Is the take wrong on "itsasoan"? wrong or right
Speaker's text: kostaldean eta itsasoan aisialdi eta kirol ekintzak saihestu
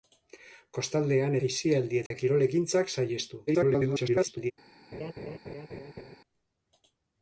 wrong